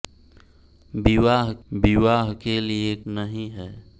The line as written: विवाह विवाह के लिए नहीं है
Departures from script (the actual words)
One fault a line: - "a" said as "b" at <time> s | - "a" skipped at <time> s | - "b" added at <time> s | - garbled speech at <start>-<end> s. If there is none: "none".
none